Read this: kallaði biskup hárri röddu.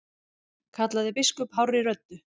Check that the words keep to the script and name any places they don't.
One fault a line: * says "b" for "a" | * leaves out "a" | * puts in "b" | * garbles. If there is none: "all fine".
all fine